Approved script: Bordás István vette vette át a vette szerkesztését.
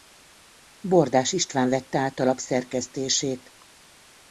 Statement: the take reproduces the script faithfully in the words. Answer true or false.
false